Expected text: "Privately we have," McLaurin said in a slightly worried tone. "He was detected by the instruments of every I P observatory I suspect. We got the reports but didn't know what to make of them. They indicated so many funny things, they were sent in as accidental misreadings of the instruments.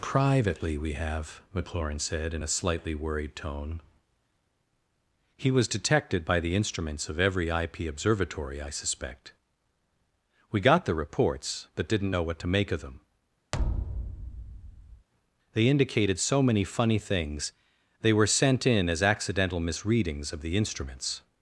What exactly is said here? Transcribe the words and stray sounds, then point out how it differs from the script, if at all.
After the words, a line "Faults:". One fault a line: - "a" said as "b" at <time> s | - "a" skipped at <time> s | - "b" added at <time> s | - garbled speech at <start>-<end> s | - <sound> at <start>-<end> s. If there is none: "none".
"Privately we have," McLaurin said in a slightly worried tone. "He was detected by the instruments of every I P observatory I suspect. We got the reports but didn't know what to make of them. They indicated so many funny things, they were sent in as accidental misreadings of the instruments.
Faults:
- thud at 13.5-15.1 s